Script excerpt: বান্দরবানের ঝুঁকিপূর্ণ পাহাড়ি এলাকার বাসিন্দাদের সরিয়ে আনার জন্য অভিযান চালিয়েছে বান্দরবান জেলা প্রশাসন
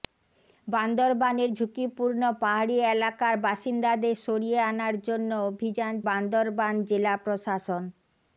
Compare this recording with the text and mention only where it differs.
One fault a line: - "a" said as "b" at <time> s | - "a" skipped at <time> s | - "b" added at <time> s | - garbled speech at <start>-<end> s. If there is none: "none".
- "চালিয়েছে" skipped at 5.9 s